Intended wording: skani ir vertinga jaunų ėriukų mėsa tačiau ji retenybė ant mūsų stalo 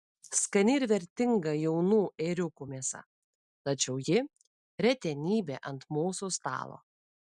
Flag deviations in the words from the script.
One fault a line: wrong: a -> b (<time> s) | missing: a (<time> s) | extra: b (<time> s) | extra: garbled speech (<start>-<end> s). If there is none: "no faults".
no faults